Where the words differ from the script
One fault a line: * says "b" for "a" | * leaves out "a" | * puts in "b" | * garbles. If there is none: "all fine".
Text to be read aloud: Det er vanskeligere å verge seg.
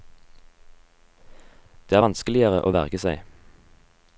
all fine